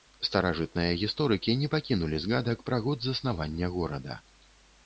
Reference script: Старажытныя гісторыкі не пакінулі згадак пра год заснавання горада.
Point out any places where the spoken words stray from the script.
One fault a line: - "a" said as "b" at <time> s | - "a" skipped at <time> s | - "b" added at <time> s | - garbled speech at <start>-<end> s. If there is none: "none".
none